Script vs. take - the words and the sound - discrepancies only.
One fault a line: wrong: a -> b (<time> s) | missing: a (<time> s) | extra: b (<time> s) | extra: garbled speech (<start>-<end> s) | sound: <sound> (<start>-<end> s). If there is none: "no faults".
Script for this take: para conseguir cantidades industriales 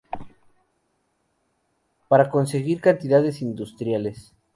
no faults